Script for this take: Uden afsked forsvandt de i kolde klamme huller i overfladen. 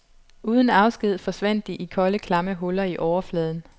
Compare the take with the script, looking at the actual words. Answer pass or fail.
pass